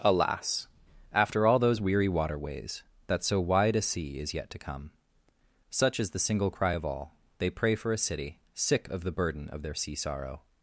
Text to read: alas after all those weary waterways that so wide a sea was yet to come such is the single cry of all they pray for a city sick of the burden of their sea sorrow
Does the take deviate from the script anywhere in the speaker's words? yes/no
yes